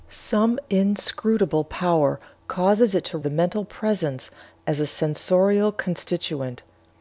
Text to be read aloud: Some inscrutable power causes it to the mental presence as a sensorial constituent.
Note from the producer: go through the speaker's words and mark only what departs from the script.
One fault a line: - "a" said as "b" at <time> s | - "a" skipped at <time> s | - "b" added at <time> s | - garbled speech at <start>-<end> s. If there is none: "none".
none